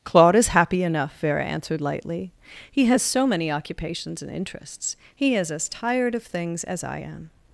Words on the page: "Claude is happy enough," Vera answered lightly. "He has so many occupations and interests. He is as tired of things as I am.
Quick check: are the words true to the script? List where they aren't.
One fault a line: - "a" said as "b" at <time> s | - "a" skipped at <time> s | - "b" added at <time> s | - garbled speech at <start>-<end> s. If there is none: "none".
none